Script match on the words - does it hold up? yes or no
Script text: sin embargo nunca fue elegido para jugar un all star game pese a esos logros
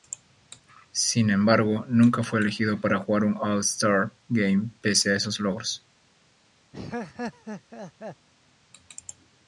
yes